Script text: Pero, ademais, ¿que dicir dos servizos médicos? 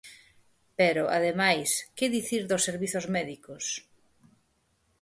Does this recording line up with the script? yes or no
yes